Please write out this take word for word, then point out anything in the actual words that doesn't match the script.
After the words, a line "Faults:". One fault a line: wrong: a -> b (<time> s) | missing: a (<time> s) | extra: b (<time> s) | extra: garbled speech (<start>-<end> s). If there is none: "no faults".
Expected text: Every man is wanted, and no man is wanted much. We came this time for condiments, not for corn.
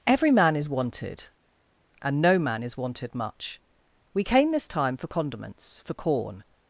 Every man is wanted, and no man is wanted much. We came this time for condiments, for corn.
Faults:
missing: not (5.8 s)